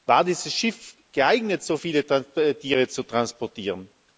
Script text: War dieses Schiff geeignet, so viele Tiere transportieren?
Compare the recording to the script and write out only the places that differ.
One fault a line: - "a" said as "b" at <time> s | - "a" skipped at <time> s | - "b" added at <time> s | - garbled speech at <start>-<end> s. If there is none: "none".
- "zu" added at 2.9 s